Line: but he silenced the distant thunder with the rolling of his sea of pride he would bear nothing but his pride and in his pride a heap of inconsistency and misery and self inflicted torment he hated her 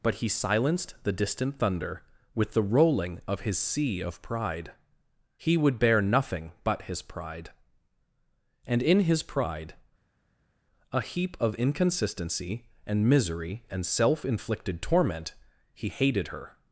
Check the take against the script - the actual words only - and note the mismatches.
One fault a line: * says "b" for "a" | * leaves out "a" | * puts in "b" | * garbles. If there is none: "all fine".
all fine